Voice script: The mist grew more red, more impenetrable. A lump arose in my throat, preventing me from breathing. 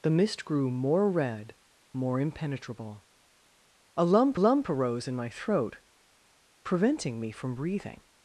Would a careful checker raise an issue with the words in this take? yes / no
yes